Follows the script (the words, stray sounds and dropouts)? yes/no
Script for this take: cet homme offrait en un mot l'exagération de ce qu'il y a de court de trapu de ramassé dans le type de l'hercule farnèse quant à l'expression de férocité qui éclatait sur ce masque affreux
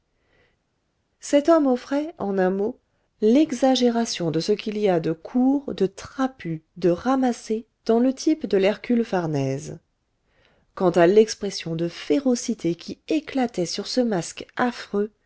yes